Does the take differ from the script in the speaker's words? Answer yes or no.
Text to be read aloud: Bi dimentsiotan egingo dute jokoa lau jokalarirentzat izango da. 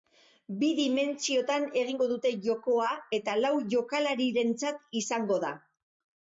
yes